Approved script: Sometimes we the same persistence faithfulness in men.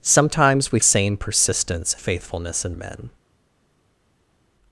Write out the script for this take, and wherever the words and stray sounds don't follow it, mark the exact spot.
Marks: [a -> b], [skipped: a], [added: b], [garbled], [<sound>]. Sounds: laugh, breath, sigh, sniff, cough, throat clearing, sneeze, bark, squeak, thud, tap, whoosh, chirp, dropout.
Sometimes we the same persistence faithfulness in men.